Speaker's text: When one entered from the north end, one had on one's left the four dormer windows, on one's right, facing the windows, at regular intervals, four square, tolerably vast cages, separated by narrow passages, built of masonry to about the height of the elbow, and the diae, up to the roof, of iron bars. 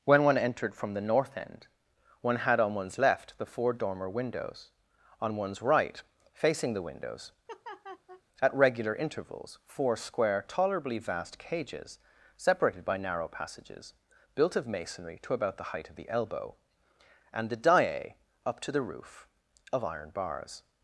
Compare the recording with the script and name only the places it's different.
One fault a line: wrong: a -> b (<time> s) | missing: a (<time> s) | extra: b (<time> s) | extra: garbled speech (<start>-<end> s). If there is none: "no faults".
no faults